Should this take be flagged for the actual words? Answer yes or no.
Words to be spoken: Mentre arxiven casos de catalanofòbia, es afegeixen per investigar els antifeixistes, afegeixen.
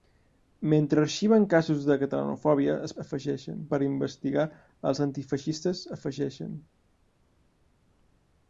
no